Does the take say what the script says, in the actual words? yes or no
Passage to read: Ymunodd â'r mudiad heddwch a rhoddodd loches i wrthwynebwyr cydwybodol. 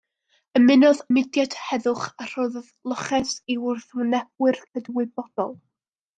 no